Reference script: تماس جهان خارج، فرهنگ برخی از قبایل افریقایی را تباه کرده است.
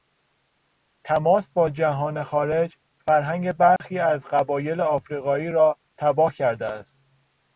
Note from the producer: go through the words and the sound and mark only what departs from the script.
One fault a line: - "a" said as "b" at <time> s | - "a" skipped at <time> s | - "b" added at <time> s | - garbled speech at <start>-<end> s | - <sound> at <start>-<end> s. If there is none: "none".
- "با" added at 1.5 s
- dropout at 3.8-3.8 s